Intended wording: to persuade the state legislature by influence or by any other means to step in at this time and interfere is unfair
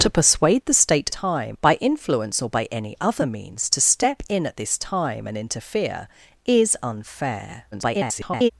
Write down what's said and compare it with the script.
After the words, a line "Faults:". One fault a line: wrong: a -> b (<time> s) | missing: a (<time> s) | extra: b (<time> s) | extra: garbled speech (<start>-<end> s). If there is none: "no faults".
to persuade the state time by influence or by any other means to step in at this time and interfere is unfair [garbled]
Faults:
wrong: legislature -> time (1.1 s)
extra: garbled speech (7.7-8.5 s)